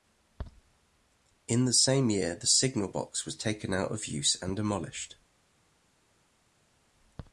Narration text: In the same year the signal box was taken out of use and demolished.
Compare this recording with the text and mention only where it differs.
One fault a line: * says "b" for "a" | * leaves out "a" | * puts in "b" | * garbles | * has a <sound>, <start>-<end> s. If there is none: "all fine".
all fine